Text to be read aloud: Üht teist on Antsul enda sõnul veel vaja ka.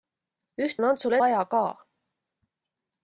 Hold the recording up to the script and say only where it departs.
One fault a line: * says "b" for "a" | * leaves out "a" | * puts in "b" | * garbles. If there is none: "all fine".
* leaves out "teist"
* leaves out "enda sõnul veel"